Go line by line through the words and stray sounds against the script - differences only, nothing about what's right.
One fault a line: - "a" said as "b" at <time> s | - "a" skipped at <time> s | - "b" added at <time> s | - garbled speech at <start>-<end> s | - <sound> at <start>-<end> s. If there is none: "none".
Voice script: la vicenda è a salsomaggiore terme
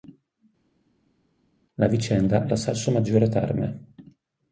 none